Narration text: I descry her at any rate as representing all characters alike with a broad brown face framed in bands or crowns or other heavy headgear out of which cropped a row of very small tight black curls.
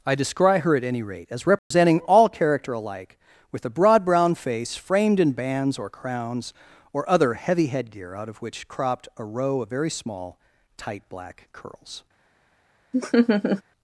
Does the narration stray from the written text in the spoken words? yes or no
yes